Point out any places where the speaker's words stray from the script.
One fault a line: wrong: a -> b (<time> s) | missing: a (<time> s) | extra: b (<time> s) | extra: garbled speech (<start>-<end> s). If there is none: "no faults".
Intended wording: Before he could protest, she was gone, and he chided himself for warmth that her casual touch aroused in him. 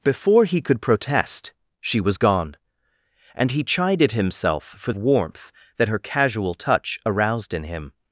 no faults